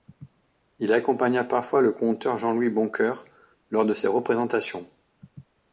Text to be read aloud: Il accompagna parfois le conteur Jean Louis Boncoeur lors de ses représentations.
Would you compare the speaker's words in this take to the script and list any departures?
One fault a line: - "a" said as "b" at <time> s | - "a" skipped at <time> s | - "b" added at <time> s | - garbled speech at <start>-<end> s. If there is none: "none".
none